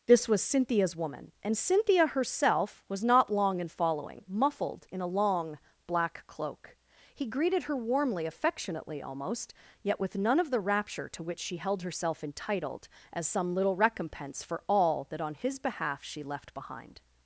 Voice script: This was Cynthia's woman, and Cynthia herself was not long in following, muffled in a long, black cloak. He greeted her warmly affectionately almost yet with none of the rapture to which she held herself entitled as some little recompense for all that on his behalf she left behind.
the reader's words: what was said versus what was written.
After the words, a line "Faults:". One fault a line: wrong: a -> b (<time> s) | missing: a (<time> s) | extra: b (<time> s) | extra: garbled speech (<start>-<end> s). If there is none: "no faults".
This was Cynthia's woman, and Cynthia herself was not long in following, muffled in a long, black cloak. He greeted her warmly affectionately almost yet with none of the rapture to which she held herself entitled as some little recompense for all that on his behalf she left behind.
Faults:
no faults